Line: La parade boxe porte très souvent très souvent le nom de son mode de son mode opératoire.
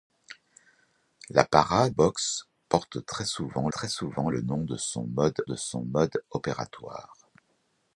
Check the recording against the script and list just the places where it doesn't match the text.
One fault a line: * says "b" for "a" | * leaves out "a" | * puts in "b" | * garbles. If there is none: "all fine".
all fine